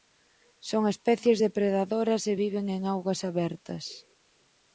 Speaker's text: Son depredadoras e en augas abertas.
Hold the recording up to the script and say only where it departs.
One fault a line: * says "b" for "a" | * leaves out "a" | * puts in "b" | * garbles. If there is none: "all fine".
* puts in "especies"
* puts in "viven"